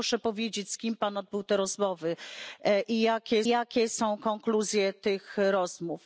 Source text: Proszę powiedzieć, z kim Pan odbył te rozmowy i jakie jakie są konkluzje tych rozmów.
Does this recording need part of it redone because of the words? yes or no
no